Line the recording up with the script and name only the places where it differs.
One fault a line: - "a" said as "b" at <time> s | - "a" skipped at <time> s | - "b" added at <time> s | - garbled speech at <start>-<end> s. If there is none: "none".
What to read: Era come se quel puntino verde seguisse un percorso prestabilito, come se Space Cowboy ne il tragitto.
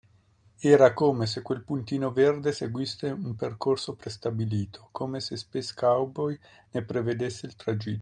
- "prevedesse" added at 6.8 s